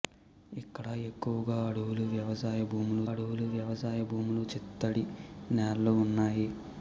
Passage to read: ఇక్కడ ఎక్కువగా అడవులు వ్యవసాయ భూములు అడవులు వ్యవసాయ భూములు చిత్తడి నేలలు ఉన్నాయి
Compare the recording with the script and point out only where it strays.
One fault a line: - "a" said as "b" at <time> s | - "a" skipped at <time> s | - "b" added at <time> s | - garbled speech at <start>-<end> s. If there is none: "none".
none